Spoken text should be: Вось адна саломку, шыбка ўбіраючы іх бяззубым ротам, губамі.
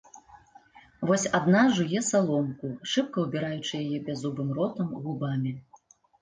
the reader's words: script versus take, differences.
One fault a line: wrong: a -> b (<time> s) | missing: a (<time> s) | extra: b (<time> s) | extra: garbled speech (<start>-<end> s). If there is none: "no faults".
extra: жуе (1.8 s)
wrong: іх -> яе (3.8 s)